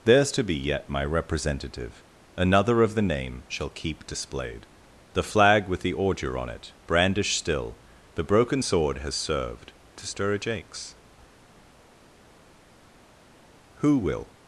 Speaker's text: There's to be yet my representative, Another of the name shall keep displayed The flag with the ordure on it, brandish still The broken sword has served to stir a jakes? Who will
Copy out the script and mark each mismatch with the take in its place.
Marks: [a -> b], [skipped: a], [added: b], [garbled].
There's to be yet my representative, Another of the name shall keep displayed The flag with the ordure on it, brandish still The broken sword has served to stir a jakes? Who will